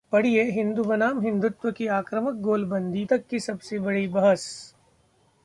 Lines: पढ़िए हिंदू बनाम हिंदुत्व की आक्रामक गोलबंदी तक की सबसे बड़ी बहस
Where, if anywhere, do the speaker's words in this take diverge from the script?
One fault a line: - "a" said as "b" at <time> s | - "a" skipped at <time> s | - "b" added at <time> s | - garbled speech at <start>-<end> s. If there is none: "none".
none